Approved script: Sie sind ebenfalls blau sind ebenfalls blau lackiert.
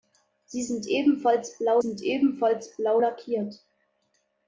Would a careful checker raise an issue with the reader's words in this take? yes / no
no